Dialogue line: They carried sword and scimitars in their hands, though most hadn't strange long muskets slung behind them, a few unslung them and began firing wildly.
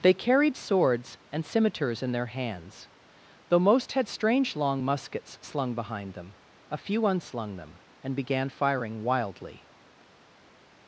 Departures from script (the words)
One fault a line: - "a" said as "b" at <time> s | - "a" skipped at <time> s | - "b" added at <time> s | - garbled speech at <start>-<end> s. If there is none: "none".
- "sword" said as "swords" at 0.6 s
- "hadn't" said as "had" at 3.9 s